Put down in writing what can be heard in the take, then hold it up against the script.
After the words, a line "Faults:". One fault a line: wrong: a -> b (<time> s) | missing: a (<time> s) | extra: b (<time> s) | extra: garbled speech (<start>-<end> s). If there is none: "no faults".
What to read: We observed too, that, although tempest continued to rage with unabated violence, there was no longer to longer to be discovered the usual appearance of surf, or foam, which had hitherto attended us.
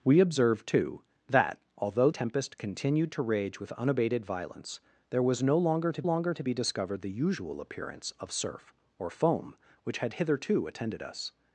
We observed too, that, although tempest continued to rage with unabated violence, there was no longer to longer to be discovered the usual appearance of surf, or foam, which had hitherto attended us.
Faults:
no faults